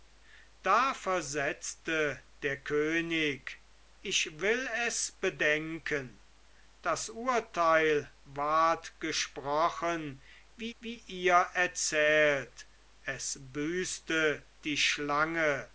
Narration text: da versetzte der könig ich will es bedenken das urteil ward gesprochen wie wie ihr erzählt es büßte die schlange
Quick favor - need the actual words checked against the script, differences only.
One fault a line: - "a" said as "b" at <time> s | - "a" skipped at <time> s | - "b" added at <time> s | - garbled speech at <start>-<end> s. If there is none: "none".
none